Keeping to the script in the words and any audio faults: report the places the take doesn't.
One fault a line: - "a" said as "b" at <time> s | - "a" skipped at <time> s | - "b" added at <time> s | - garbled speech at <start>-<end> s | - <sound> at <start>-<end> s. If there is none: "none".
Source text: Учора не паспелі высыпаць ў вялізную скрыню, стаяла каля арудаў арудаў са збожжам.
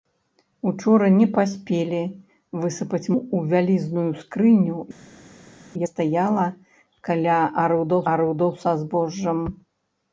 none